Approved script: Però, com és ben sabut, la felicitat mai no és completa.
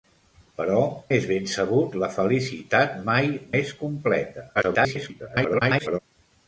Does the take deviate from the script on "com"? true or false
true